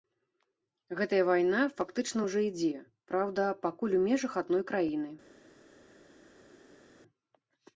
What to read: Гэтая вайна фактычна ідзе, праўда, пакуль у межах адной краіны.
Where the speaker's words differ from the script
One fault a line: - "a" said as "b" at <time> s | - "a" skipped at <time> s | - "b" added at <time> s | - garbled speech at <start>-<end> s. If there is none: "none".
- "ўжо" added at 2.3 s